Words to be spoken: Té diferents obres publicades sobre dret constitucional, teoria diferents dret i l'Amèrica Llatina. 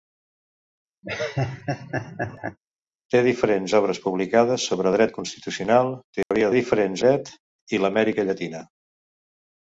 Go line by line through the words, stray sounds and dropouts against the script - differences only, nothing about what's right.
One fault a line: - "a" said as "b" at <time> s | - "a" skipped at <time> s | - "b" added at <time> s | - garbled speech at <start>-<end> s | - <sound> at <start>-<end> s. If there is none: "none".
- laugh at 1.0-2.6 s
- dropout at 6.2-6.3 s